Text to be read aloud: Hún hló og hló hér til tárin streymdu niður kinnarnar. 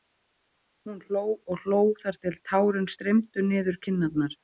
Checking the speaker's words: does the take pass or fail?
fail